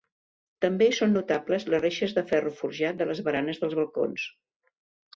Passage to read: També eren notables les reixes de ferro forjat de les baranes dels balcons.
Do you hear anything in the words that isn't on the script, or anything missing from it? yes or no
yes